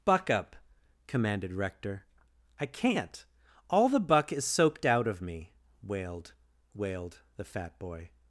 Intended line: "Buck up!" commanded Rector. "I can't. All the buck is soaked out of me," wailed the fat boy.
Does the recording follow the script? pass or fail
fail